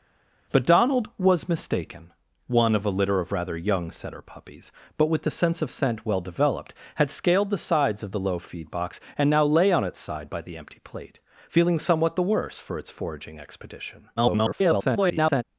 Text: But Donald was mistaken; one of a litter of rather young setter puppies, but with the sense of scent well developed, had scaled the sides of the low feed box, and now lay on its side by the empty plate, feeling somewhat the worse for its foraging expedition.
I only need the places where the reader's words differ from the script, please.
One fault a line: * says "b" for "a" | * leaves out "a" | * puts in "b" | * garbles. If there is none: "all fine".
* garbles